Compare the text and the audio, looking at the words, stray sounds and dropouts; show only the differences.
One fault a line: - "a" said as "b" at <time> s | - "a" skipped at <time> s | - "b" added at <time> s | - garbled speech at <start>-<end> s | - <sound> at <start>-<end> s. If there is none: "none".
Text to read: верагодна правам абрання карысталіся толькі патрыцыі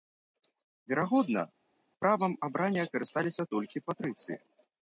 none